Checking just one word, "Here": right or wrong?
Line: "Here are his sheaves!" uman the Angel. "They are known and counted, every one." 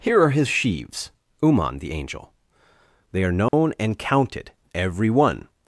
right